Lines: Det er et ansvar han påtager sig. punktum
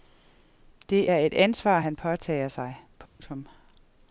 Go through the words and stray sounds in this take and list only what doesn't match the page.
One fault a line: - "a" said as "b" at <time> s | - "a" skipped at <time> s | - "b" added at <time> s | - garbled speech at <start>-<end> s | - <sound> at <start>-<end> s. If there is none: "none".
- dropout at 3.1-3.2 s